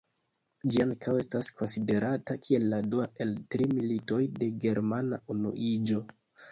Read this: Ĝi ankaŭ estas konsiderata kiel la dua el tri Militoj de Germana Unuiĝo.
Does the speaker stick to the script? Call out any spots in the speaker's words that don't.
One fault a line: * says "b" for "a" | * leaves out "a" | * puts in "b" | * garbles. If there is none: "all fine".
all fine